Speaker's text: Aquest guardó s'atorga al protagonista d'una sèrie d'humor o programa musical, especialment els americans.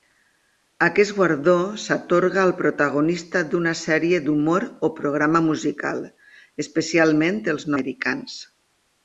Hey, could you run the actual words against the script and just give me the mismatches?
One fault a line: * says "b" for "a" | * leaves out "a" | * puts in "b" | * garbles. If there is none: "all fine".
all fine